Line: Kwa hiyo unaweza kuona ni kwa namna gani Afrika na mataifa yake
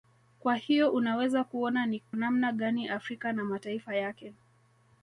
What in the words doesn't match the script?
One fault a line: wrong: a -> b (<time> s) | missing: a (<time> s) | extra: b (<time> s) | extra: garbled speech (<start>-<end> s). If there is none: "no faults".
missing: kwa (2.0 s)